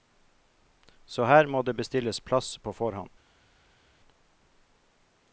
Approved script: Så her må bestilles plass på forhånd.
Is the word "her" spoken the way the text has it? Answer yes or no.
yes